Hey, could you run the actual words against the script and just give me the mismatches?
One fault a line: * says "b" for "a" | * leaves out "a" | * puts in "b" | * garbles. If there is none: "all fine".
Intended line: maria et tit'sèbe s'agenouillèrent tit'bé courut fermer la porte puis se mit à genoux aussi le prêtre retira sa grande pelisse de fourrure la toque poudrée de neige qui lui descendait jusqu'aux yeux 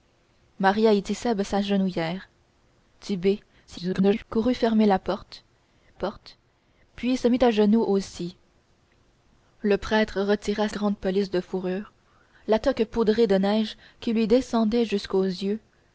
* garbles
* puts in "porte"
* leaves out "sa"